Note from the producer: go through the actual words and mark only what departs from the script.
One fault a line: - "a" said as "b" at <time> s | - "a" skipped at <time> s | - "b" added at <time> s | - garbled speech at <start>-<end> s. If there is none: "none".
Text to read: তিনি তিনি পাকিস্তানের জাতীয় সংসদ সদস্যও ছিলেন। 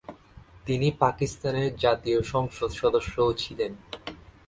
- "তিনি" skipped at 0.9 s